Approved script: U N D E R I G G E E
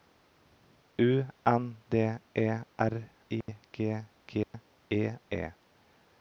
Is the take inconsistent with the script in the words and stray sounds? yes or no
yes